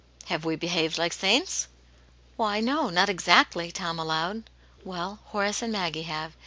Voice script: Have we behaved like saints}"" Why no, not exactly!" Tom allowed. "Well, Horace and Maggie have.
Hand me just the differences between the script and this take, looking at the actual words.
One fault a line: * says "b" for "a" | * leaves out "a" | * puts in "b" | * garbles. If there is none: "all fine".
all fine